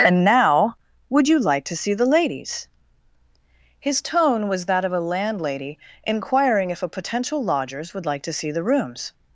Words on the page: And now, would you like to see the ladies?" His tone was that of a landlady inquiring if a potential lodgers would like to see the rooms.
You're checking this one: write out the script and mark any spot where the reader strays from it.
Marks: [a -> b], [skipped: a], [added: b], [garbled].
And now, would you like to see the ladies?" His tone was that of a landlady inquiring if a potential lodgers would like to see the rooms.